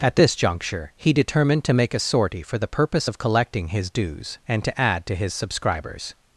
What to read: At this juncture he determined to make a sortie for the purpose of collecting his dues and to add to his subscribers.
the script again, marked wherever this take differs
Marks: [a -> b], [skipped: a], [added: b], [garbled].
At this juncture he determined to make a sortie for the purpose of collecting his dues and to add to his subscribers.